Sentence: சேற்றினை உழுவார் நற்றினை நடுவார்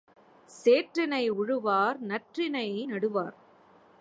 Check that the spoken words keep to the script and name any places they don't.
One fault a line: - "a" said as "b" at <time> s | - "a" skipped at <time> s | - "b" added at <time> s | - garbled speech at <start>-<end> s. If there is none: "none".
none